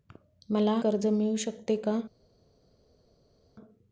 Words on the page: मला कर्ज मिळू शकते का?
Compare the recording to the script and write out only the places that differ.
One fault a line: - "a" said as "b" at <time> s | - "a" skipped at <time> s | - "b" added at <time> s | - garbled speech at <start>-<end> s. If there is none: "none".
none